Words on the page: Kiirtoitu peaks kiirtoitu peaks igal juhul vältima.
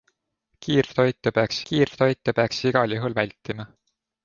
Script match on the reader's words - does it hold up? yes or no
yes